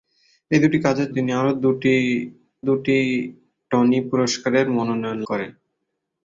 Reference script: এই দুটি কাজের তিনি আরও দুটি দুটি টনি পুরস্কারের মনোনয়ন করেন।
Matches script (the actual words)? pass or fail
pass